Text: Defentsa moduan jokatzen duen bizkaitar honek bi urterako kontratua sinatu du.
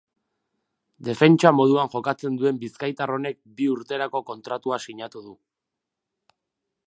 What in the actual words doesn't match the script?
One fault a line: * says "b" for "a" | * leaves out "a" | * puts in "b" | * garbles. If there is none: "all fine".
all fine